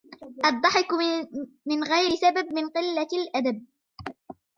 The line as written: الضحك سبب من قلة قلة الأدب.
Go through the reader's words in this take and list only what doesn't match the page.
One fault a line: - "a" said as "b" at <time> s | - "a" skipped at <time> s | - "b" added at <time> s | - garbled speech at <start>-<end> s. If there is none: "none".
- "من غير" added at 1.6 s
- "قلة" skipped at 3.1 s